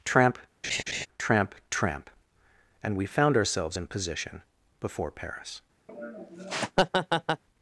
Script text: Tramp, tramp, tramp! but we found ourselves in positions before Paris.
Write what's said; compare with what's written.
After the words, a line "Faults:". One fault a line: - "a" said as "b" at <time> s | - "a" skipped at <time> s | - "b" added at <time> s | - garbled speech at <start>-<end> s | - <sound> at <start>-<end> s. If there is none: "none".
Tramp, tramp, tramp! and we found ourselves in position before Paris.
Faults:
- laugh at 0.6-1.1 s
- "but" said as "and" at 2.8 s
- "positions" said as "position" at 3.9 s
- laugh at 5.9-7.4 s